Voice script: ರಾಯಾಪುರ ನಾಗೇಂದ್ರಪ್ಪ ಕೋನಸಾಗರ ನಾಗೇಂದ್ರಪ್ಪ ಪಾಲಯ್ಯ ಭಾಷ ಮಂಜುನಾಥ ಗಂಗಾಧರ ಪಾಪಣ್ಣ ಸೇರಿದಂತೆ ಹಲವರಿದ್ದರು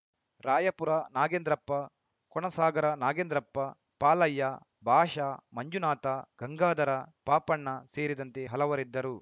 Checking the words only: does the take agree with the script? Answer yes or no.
yes